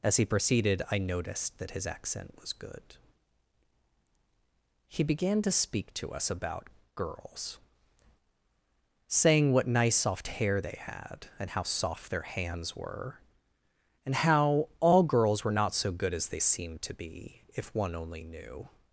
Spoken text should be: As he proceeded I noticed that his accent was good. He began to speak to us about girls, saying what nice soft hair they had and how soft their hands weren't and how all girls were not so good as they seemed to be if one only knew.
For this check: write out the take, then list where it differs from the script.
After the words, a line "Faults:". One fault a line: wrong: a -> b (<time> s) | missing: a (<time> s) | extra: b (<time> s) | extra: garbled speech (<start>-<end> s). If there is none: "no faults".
As he proceeded I noticed that his accent was good. He began to speak to us about girls, saying what nice soft hair they had and how soft their hands were and how all girls were not so good as they seemed to be if one only knew.
Faults:
wrong: weren't -> were (12.7 s)